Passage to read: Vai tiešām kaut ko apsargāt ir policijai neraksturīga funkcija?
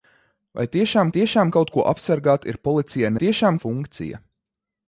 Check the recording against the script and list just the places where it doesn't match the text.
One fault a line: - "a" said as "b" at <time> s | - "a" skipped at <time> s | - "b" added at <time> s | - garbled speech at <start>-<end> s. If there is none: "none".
- "tiešām" added at 1.2 s
- "neraksturīga" said as "tiešām" at 3.2 s